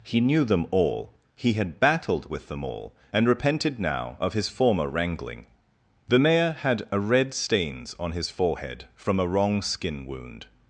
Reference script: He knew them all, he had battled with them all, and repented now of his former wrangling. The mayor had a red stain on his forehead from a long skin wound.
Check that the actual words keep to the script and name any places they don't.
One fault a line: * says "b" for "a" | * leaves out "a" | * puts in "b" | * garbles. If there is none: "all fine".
* says "stains" for "stain"
* says "wrong" for "long"